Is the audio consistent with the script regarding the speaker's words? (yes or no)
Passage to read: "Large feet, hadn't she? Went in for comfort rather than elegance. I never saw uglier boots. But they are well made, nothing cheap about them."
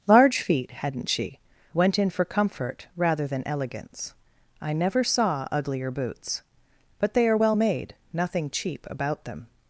yes